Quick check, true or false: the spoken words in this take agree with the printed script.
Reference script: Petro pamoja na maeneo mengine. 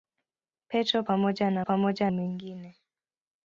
false